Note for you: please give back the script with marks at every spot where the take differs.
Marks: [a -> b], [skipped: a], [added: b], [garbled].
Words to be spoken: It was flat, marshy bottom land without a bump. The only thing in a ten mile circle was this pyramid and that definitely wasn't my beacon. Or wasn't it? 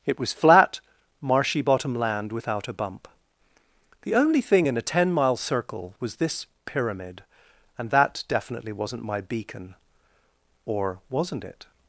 It was flat, marshy bottom land without a bump. The only thing in a ten mile circle was this pyramid and that definitely wasn't my beacon. Or wasn't it?